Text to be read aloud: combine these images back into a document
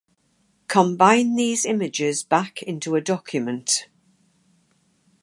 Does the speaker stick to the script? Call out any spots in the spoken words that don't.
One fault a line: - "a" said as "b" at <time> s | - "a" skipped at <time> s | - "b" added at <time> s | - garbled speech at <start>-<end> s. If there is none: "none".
none